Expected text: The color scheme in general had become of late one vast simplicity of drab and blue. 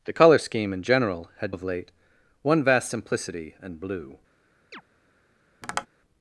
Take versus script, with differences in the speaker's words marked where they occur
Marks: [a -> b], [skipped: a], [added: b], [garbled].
The color scheme in general had [skipped: become] of late one vast simplicity [skipped: of drab] and blue.